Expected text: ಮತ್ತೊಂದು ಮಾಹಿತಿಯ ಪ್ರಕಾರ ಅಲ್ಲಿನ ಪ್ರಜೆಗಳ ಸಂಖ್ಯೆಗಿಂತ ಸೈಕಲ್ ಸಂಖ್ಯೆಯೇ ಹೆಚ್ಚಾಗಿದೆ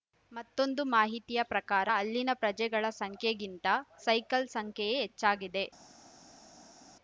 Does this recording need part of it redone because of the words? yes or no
no